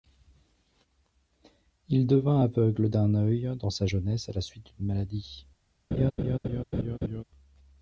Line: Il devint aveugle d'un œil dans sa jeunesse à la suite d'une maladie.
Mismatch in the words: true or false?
false